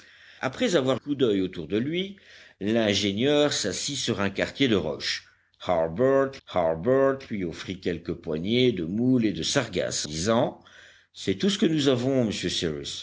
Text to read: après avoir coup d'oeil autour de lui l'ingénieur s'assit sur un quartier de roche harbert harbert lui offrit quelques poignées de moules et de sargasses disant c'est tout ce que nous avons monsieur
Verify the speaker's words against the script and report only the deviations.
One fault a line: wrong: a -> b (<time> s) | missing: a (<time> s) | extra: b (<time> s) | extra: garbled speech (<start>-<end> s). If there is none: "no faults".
no faults